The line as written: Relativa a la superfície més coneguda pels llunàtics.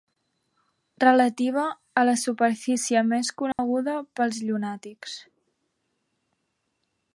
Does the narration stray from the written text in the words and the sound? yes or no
yes